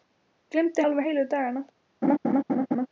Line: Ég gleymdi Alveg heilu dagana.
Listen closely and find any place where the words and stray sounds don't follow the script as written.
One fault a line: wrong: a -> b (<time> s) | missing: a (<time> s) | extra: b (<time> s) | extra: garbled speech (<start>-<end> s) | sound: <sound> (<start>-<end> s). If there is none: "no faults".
sound: laugh (2.0-2.9 s)